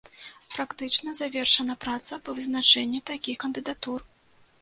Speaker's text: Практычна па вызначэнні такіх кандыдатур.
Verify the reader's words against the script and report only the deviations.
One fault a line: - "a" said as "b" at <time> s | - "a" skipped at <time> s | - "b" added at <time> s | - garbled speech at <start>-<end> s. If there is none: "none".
- "завершана праца" added at 1.2 s